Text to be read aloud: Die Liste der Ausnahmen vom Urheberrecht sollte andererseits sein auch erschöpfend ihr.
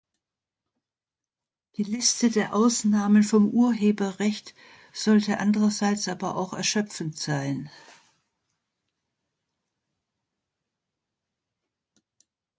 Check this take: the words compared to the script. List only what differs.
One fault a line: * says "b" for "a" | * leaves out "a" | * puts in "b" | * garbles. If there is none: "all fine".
* says "aber" for "sein"
* says "sein" for "ihr"